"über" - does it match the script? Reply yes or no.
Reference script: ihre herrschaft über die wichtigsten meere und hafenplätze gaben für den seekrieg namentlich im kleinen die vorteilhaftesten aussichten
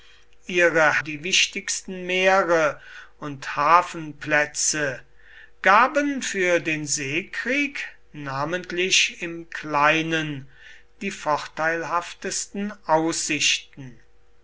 no